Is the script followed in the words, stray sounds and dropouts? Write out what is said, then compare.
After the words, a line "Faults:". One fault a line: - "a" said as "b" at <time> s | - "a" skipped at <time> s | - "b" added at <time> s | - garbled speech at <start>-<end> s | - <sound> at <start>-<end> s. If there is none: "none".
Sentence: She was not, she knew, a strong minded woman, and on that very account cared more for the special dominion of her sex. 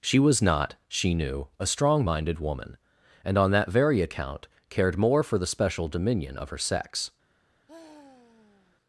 She was not, she knew, a strong minded woman, and on that very account cared more for the special dominion of her sex.
Faults:
- sigh at 7.7-8.8 s